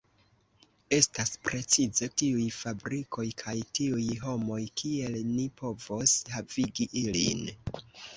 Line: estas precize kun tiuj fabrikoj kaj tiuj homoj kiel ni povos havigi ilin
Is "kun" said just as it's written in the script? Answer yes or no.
no